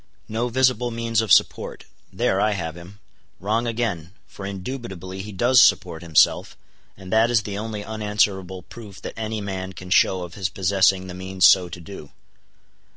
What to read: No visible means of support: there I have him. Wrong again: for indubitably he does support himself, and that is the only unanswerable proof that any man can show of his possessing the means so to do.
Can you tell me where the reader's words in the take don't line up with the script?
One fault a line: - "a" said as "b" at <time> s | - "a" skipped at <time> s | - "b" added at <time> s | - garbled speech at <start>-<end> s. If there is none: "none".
none